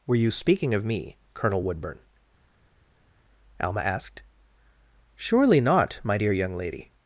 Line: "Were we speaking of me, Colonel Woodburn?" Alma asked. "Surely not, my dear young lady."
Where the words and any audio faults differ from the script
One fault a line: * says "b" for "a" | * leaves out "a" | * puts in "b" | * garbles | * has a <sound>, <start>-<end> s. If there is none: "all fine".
* says "you" for "we"